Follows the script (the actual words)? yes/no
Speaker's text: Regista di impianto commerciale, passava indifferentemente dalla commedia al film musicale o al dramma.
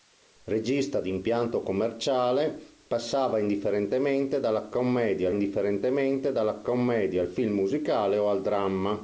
no